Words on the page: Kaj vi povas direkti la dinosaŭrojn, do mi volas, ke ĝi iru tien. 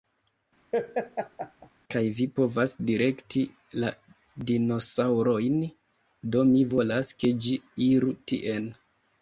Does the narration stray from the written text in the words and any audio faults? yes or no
yes